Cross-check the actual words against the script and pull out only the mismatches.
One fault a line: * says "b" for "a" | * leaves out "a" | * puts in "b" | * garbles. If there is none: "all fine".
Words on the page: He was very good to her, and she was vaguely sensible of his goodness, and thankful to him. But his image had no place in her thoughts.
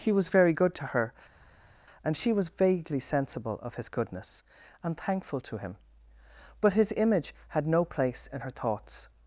all fine